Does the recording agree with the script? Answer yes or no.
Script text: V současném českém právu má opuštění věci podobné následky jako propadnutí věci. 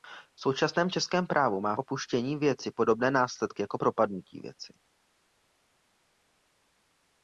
yes